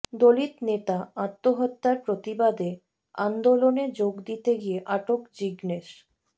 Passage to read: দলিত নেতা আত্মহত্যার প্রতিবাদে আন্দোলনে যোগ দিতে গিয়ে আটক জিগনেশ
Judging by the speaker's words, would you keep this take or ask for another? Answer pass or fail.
pass